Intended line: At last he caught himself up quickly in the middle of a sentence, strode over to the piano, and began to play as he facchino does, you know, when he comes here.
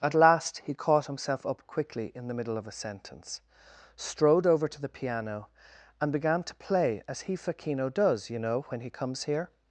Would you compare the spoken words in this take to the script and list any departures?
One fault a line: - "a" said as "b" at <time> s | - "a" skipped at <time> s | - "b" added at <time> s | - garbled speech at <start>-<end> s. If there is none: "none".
none